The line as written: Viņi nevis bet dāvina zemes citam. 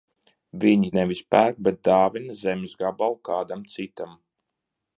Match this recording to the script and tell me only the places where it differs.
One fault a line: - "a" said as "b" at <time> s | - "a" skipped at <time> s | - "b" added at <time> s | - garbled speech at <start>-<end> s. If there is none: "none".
- "pērk" added at 1.4 s
- "gabalu kādam" added at 2.8 s